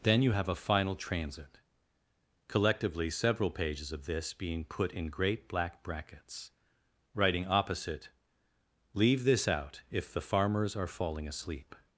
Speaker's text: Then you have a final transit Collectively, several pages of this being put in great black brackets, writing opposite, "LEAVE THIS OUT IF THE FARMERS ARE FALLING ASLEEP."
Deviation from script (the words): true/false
false